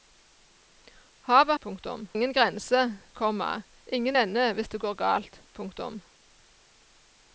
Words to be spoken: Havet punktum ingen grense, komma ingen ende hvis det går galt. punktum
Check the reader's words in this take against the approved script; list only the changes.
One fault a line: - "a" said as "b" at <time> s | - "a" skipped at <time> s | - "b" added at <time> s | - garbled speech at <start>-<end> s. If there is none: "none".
none